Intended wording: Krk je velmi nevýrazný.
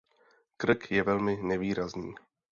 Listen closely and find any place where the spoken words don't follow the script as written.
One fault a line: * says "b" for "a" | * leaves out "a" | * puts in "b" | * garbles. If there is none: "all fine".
all fine